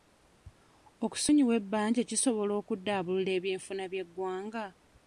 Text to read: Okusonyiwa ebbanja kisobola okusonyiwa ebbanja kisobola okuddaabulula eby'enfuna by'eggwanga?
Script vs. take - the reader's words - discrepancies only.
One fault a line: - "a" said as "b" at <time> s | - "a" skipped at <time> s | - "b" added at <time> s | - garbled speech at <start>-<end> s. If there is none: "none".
- "okusonyiwa ebbanja kisobola" skipped at 2.5 s